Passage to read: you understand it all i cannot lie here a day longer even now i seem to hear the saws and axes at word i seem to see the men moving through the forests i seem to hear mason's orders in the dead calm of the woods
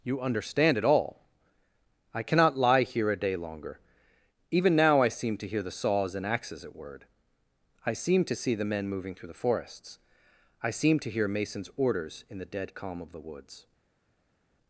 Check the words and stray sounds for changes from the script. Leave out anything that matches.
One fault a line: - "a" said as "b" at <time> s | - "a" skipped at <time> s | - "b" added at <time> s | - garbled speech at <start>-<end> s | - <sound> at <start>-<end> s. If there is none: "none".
none